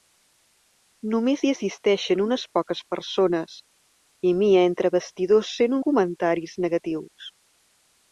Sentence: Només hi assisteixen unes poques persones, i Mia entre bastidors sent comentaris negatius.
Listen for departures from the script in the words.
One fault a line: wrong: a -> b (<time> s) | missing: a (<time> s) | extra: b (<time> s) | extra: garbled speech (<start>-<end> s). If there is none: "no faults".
no faults